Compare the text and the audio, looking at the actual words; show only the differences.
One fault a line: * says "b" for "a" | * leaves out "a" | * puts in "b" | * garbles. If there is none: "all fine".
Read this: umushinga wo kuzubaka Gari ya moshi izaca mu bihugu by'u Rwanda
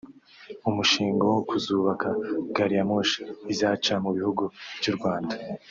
all fine